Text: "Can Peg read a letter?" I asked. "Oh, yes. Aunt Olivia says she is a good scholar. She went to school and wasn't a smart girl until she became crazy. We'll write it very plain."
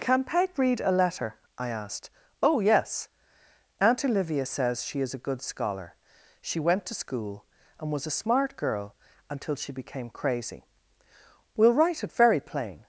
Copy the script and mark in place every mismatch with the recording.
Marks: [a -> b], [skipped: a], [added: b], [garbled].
"Can Peg read a letter?" I asked. "Oh, yes. Aunt Olivia says she is a good scholar. She went to school and [wasn't -> was] a smart girl until she became crazy. We'll write it very plain."